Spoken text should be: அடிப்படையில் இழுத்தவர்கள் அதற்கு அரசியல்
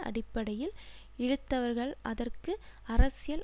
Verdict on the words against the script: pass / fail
pass